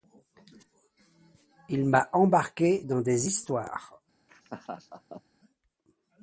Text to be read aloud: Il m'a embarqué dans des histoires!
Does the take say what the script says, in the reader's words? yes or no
yes